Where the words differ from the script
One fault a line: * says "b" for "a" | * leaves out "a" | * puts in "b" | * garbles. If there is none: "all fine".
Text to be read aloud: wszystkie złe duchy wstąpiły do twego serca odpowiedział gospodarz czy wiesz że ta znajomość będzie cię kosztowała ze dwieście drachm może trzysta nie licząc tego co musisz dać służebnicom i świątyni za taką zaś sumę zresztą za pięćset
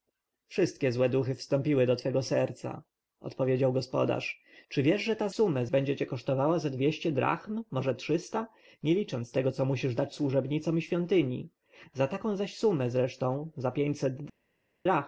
* says "sumę" for "znajomość"